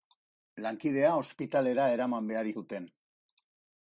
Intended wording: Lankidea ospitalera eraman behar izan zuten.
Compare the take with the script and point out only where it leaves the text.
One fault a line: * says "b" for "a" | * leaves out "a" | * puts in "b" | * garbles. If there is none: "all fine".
* leaves out "izan"